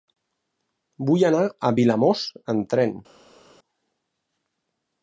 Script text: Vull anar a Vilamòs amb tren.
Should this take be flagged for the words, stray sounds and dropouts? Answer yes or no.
no